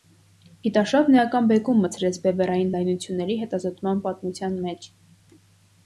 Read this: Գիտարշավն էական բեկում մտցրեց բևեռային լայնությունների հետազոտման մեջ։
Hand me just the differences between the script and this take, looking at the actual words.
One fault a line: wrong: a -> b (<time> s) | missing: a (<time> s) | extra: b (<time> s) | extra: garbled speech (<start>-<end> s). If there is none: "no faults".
extra: պատմության (4.1 s)